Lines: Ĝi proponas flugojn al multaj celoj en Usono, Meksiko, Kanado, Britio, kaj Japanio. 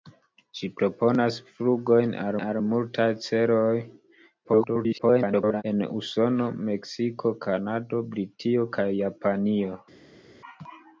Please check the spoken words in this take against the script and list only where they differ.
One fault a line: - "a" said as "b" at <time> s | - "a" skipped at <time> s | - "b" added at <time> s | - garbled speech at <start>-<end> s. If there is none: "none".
- "al" added at 2.4 s
- garbled speech at 4.4-5.6 s